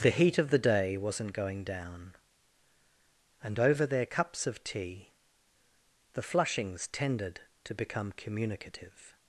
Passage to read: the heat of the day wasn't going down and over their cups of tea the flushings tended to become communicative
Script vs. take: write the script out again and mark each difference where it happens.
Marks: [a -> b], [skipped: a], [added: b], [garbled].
the heat of the day wasn't going down and over their cups of tea the flushings tended to become communicative